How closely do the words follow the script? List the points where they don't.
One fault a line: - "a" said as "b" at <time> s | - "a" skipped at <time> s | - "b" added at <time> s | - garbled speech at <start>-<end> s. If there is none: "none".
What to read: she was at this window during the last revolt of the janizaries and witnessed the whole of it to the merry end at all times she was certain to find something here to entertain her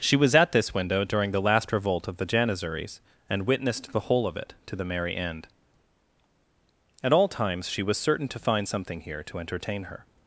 none